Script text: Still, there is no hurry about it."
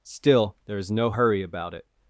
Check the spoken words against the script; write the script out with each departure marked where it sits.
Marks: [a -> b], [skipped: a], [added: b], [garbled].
Still, there is no hurry about it."